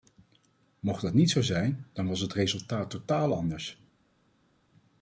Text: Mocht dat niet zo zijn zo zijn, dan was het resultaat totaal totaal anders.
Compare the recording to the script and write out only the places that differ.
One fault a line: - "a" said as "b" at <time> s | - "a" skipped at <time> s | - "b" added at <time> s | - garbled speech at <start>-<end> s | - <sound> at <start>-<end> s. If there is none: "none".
- "zo zijn" skipped at 1.9 s
- "totaal" skipped at 3.3 s